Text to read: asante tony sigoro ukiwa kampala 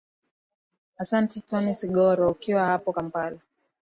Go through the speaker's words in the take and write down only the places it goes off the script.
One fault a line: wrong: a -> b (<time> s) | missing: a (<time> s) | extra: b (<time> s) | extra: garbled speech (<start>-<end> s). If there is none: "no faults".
extra: hapo (2.6 s)